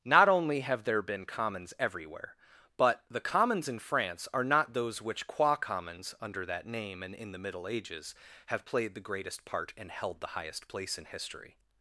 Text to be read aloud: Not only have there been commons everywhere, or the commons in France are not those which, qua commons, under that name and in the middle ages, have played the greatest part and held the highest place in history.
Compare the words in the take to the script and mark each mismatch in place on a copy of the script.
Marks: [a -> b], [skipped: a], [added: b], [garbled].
Not only have there been commons everywhere, [or -> but] the commons in France are not those which, qua commons, under that name and in the middle ages, have played the greatest part and held the highest place in history.